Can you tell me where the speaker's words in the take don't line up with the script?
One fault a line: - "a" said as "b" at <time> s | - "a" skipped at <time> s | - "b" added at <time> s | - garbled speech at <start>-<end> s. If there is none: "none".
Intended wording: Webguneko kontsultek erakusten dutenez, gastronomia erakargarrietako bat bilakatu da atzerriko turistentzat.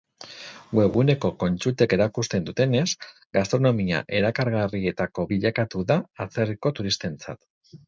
- "bat" skipped at 5.3 s